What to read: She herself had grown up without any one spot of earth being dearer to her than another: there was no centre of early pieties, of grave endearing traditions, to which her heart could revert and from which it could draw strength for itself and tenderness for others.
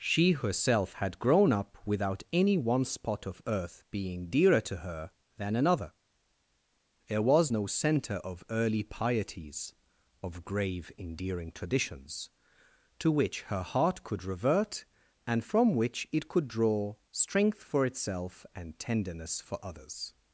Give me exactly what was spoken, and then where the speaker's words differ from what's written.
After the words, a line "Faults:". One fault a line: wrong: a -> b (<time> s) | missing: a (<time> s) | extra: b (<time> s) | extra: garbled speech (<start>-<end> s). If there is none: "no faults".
She herself had grown up without any one spot of earth being dearer to her than another: there was no centre of early pieties, of grave endearing traditions, to which her heart could revert and from which it could draw strength for itself and tenderness for others.
Faults:
no faults